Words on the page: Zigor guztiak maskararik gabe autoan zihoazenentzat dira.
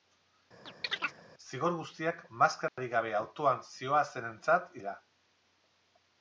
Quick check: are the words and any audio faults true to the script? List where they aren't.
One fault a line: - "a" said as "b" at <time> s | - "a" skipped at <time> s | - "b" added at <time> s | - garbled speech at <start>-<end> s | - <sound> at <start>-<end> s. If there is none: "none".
- chirp at 0.7-1.2 s
- dropout at 2.7-2.8 s